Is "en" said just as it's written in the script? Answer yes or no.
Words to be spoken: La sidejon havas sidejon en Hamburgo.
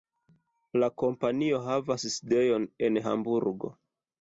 yes